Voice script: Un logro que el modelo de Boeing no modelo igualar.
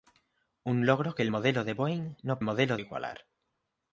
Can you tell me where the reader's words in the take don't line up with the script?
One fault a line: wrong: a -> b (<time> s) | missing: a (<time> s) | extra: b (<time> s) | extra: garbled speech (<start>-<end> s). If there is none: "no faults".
no faults